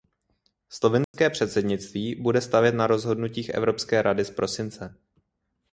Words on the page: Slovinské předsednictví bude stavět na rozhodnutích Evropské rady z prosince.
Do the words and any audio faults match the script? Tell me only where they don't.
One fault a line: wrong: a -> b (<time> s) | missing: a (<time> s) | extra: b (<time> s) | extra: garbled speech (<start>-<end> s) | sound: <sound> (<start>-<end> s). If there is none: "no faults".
sound: dropout (1.0-1.1 s)